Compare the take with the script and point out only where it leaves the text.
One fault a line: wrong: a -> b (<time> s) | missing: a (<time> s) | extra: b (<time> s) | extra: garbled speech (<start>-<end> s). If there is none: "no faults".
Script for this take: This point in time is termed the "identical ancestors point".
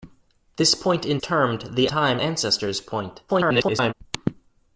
missing: time is (1.2 s)
wrong: identical -> time (1.9 s)
extra: garbled speech (3.3-3.9 s)